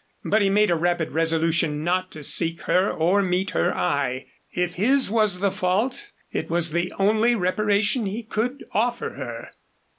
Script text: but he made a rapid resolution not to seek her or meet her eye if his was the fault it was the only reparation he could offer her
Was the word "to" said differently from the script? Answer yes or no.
no